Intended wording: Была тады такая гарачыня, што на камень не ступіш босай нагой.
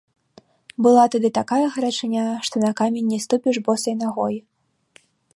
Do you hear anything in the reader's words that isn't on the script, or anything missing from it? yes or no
no